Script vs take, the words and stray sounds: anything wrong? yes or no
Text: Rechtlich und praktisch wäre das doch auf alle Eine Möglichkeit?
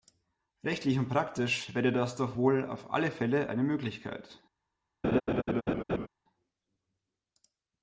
yes